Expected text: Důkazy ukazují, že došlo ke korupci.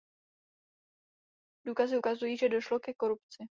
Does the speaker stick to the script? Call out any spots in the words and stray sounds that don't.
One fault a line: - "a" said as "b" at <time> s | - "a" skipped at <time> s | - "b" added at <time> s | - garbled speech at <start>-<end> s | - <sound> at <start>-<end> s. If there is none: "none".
none